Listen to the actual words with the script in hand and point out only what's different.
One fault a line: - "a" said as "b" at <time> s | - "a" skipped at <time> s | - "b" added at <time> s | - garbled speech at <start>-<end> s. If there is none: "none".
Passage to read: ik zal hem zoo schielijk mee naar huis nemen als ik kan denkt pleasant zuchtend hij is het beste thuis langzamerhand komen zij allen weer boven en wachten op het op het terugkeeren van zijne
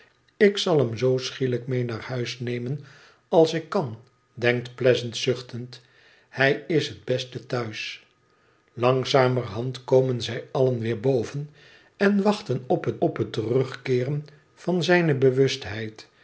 none